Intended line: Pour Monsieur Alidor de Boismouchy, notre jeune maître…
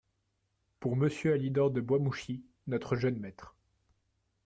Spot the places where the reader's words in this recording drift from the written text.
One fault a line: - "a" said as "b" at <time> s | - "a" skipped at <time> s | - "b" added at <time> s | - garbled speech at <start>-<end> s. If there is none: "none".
none